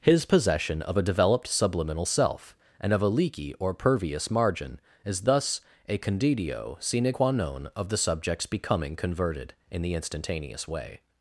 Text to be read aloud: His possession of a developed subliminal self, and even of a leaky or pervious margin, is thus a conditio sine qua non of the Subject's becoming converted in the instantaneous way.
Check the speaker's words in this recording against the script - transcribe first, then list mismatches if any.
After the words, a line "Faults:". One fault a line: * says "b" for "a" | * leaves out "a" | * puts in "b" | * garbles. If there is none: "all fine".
His possession of a developed subliminal self, and of a leaky or pervious margin, is thus a conditio sine qua non of the Subject's becoming converted in the instantaneous way.
Faults:
* leaves out "even"